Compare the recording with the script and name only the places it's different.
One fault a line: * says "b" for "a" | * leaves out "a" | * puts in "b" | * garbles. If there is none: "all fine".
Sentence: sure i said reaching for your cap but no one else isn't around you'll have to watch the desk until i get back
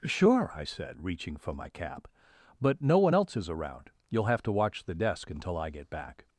* says "my" for "your"
* says "is" for "isn't"